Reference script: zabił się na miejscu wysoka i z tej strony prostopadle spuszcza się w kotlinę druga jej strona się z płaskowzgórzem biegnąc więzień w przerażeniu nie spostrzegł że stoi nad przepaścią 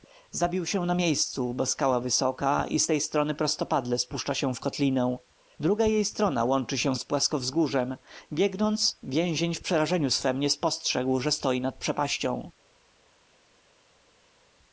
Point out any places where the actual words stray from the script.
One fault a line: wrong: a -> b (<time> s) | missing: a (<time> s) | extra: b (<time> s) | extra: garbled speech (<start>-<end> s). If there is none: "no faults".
extra: bo skała (1.5 s)
extra: łączy (6.4 s)
extra: swem (10.1 s)